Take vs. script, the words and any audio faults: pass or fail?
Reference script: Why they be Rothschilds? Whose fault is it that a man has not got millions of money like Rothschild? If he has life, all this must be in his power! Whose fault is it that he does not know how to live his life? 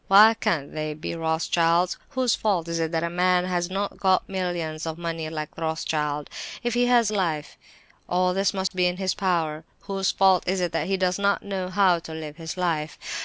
fail